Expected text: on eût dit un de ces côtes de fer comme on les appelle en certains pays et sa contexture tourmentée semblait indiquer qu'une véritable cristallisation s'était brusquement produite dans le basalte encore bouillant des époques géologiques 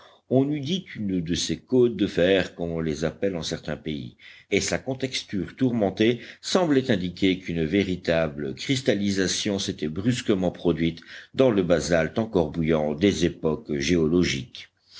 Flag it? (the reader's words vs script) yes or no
yes